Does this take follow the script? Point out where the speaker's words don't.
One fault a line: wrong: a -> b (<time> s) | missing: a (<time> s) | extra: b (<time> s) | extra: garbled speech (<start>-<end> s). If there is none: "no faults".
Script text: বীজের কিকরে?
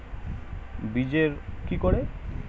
no faults